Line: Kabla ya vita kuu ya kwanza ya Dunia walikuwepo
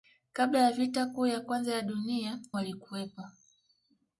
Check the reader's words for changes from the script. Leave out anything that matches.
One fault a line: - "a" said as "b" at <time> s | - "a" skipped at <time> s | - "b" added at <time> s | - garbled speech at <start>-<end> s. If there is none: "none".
none